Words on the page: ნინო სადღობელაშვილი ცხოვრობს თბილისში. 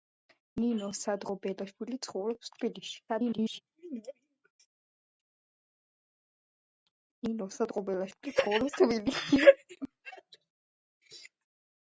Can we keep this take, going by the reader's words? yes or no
no